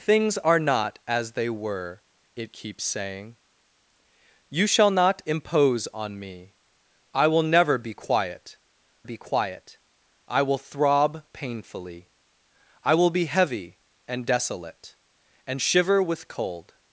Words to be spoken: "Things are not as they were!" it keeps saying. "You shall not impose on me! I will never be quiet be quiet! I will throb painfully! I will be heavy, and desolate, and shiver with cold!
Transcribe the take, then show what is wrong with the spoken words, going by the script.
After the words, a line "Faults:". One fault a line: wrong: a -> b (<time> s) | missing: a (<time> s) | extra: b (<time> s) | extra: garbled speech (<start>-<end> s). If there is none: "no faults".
"Things are not as they were!" it keeps saying. "You shall not impose on me! I will never be quiet be quiet! I will throb painfully! I will be heavy, and desolate, and shiver with cold!
Faults:
no faults